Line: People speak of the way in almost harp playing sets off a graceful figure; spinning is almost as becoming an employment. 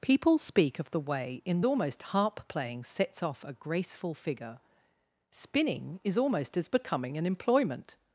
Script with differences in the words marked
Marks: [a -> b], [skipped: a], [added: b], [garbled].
People speak of the way in almost harp playing sets off a graceful figure; spinning is almost as becoming an employment.